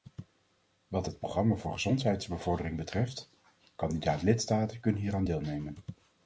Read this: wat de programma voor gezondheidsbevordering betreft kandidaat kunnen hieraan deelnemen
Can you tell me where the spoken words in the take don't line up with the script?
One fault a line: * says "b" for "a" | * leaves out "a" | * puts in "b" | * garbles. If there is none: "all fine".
* says "het" for "de"
* puts in "lidstaten"